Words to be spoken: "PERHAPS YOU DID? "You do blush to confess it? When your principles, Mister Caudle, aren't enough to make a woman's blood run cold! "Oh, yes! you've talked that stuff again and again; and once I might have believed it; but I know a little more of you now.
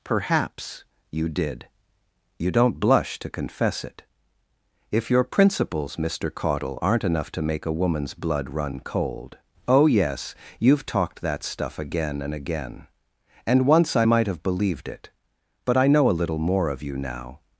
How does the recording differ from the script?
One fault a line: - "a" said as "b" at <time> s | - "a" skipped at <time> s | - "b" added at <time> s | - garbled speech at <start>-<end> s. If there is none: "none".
- "do" said as "don't" at 2.5 s
- "When" said as "If" at 4.9 s